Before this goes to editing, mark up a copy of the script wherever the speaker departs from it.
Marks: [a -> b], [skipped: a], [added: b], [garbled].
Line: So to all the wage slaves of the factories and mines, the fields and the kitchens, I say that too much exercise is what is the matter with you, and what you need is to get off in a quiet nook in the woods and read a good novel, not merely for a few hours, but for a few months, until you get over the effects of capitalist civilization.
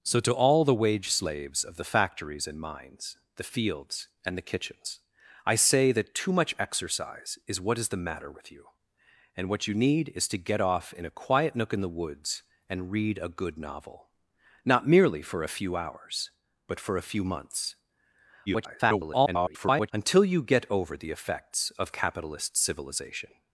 So to all the wage slaves of the factories and mines, the fields and the kitchens, I say that too much exercise is what is the matter with you, and what you need is to get off in a quiet nook in the woods and read a good novel, not merely for a few hours, but for a few months, [garbled] until you get over the effects of capitalist civilization.